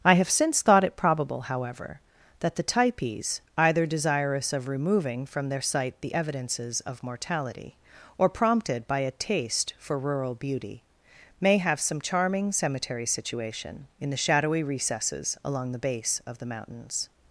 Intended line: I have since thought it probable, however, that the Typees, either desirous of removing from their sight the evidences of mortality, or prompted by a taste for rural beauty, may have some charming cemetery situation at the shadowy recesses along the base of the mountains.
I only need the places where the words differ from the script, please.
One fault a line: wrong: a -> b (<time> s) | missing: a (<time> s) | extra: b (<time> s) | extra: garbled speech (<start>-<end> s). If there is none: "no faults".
wrong: at -> in (14.0 s)